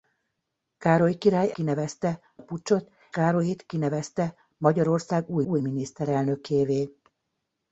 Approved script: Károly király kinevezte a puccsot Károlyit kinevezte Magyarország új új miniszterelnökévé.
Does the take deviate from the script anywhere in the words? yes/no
no